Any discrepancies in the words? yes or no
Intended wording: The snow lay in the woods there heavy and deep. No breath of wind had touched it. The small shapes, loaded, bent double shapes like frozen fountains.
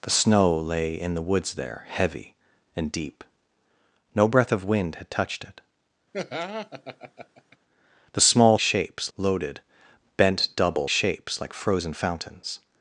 no